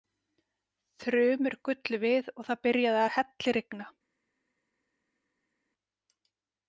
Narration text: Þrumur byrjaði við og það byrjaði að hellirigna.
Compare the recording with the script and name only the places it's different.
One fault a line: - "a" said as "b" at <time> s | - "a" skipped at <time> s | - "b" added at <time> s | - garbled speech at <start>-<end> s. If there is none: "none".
- "byrjaði" said as "gullu" at 1.7 s